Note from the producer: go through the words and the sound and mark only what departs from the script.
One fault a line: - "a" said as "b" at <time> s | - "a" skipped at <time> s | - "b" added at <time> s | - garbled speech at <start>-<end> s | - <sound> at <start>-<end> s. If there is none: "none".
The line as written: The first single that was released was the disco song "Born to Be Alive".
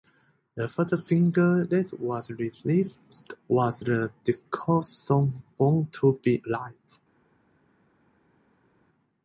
none